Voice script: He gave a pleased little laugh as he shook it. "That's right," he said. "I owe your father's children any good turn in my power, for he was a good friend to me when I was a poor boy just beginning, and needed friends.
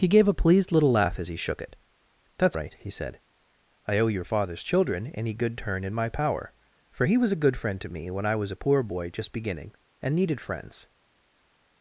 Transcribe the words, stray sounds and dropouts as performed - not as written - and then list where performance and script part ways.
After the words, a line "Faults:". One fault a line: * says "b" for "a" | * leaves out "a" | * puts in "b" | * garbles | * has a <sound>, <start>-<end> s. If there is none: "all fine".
He gave a pleased little laugh as he shook it. "That's right," he said. "I owe your father's children any good turn in my power, for he was a good friend to me when I was a poor boy just beginning, and needed friends.
Faults:
all fine